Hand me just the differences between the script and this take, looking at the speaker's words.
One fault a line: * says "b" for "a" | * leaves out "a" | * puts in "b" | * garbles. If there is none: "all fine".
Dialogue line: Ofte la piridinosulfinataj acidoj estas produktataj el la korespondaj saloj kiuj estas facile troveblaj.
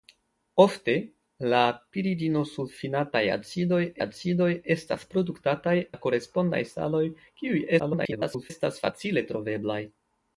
* puts in "acidoj"
* leaves out "el"
* garbles